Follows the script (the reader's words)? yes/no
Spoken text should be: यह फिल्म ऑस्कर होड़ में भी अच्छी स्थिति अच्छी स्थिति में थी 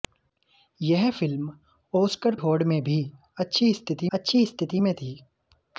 yes